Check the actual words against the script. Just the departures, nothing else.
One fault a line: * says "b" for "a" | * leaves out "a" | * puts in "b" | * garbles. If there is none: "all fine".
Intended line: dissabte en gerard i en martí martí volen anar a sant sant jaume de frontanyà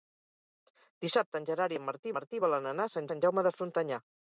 all fine